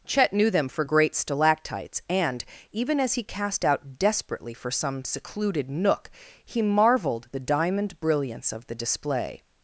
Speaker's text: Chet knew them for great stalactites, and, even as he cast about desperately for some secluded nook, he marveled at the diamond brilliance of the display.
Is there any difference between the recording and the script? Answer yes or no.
yes